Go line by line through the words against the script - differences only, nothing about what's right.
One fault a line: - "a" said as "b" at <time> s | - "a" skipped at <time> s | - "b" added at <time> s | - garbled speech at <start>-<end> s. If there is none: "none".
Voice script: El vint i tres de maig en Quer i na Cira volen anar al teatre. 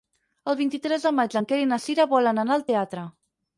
none